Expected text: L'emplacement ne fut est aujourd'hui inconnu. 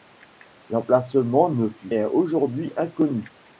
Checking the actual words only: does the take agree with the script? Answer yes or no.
yes